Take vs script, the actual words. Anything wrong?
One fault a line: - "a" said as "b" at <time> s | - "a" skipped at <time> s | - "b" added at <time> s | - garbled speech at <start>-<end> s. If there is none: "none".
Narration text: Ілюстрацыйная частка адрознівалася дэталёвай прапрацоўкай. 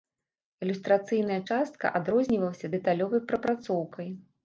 none